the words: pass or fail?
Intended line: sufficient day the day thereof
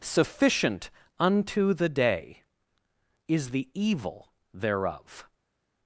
fail